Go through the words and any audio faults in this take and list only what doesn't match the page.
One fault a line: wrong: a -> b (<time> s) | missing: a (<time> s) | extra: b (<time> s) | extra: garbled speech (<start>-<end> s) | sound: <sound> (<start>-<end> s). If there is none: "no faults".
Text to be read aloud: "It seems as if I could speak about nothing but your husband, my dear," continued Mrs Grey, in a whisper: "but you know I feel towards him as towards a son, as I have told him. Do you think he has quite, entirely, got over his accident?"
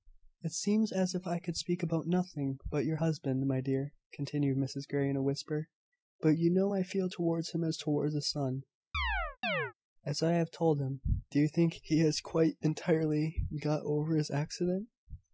sound: chirp (8.9-9.7 s)